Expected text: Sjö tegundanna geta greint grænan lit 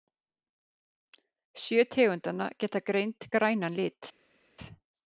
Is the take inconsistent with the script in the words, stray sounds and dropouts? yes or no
no